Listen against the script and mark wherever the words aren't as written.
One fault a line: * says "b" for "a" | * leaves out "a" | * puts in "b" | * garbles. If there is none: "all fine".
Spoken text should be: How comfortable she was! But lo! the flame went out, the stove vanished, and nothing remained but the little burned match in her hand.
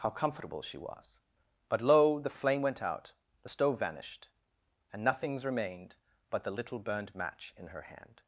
* says "nothings" for "nothing"